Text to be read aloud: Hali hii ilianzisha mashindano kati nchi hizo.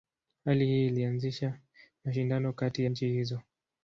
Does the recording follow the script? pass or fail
pass